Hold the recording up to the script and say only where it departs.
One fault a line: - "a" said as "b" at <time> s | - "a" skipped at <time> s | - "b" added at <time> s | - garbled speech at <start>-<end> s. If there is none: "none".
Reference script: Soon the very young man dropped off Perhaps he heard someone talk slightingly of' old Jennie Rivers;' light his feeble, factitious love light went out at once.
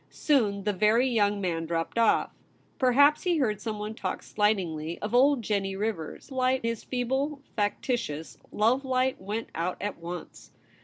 none